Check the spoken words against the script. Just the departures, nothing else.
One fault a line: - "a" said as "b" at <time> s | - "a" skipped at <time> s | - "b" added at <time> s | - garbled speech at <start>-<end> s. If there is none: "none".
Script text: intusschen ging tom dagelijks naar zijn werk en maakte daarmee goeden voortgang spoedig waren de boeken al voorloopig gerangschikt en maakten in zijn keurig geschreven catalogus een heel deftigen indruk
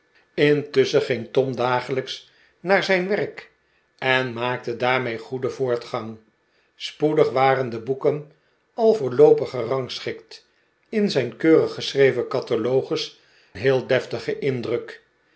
- "en maakten" skipped at 10.5 s
- "een" skipped at 13.2 s